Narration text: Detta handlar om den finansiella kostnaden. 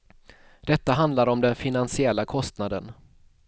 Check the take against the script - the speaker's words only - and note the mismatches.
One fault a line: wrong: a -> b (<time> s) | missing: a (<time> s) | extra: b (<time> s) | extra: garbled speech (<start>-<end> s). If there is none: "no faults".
no faults